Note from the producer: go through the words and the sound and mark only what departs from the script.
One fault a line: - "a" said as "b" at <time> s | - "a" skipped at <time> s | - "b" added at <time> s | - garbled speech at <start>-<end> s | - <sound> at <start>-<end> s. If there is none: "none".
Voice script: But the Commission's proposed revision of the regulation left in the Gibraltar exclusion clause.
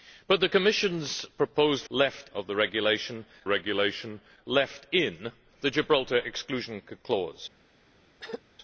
- "revision" said as "left" at 1.9 s
- "regulation" added at 3.5 s
- throat clearing at 8.2-8.4 s